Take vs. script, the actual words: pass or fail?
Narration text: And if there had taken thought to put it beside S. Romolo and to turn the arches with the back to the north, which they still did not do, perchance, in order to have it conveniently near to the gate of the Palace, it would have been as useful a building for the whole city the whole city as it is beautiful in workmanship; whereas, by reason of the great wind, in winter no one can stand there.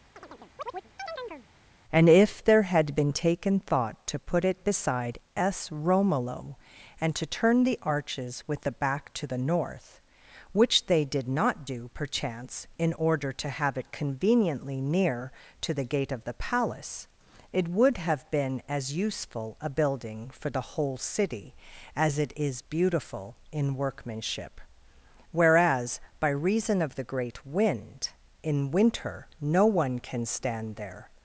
fail